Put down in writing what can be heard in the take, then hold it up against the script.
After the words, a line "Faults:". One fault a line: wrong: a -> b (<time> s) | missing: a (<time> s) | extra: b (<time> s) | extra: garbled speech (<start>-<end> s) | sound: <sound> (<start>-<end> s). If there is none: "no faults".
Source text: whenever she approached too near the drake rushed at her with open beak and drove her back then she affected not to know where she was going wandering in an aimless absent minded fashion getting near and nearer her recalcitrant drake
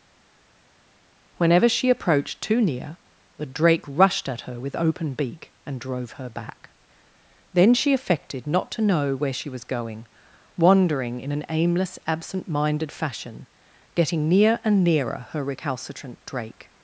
whenever she approached too near the drake rushed at her with open beak and drove her back then she affected not to know where she was going wandering in an aimless absent minded fashion getting near and nearer her recalcitrant drake
Faults:
no faults